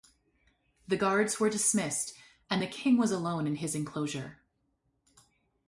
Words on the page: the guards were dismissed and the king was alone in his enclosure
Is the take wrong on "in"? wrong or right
right